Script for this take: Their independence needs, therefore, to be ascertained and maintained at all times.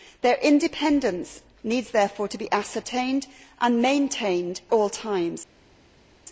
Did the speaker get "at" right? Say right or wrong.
wrong